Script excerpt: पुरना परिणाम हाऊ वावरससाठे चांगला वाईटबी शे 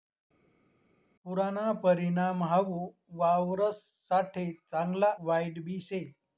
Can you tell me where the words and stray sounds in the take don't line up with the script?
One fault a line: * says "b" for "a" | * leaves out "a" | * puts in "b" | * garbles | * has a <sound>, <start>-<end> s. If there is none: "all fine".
all fine